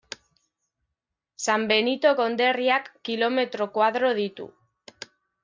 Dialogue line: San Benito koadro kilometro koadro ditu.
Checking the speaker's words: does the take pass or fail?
fail